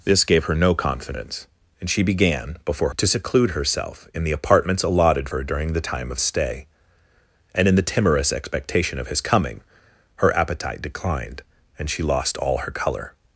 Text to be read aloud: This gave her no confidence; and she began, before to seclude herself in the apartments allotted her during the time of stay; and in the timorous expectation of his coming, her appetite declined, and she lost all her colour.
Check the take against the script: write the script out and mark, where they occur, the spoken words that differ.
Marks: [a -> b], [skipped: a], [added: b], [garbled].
This gave her no confidence; and she began, before to seclude herself in the apartments allotted her during the time of stay; and in the timorous expectation of his coming, her appetite declined, and she lost all her colour.